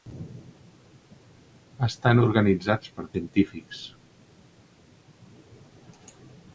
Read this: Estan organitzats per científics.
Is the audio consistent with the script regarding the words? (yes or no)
yes